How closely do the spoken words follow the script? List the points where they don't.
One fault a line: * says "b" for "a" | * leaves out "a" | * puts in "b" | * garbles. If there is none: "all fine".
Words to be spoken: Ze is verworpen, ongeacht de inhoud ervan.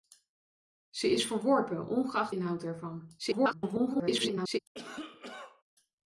* leaves out "de"
* garbles